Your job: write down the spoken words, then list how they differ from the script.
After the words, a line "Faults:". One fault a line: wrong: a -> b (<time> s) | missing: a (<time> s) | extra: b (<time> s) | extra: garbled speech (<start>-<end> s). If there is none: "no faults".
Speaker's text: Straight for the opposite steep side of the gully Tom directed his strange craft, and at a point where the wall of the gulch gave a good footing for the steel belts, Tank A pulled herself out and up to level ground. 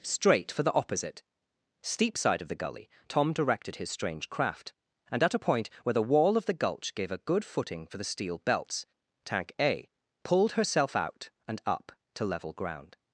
Straight for the opposite steep side of the gully Tom directed his strange craft, and at a point where the wall of the gulch gave a good footing for the steel belts, Tank A pulled herself out and up to level ground.
Faults:
no faults